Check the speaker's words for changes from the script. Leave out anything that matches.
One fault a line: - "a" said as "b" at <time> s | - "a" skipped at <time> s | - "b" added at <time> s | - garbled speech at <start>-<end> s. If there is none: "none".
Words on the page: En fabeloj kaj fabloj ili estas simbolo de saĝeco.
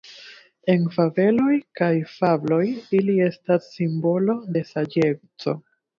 none